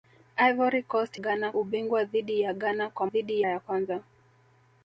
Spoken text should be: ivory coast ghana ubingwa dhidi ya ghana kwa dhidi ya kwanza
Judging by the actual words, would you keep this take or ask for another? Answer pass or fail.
pass